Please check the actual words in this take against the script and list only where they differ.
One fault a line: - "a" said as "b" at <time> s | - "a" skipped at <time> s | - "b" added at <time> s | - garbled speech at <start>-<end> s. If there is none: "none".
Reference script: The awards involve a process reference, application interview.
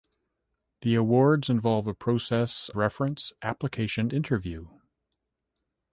none